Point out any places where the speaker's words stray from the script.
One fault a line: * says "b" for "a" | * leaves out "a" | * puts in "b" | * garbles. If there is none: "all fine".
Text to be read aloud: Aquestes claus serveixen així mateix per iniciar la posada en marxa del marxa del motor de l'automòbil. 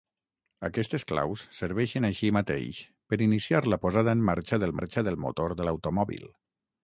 all fine